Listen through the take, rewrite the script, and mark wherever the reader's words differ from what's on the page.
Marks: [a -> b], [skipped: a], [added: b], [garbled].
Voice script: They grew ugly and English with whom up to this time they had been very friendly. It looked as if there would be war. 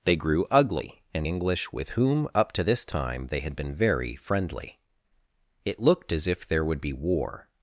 They grew ugly and English with whom up to this time they had been very friendly. It looked as if there would be war.